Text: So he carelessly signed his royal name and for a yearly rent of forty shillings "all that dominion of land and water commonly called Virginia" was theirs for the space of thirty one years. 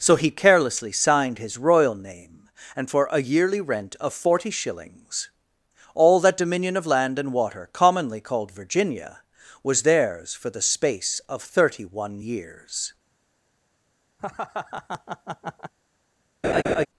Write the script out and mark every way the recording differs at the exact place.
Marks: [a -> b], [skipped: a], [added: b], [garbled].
So he carelessly signed his royal name and for a yearly rent of forty shillings "all that dominion of land and water commonly called Virginia" was theirs for the space of thirty one years.